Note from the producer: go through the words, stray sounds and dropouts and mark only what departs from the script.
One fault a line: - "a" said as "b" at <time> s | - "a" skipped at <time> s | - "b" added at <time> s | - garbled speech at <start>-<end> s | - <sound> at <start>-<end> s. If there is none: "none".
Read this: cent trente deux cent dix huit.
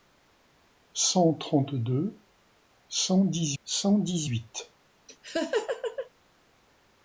- "cent dix" added at 3.6 s
- laugh at 5.1-6.1 s